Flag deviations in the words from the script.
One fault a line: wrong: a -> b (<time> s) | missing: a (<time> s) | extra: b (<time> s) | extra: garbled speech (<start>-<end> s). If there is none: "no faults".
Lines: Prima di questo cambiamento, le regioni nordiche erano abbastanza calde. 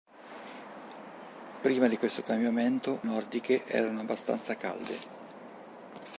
missing: le regioni (3.0 s)